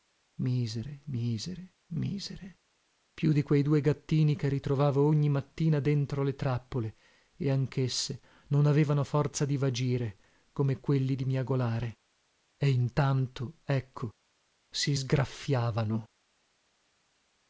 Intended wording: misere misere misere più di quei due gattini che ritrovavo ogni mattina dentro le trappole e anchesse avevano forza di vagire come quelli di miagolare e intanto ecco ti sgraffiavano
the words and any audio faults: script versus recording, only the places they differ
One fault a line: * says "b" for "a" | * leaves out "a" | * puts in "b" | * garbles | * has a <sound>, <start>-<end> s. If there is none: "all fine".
* puts in "non"
* says "si" for "ti"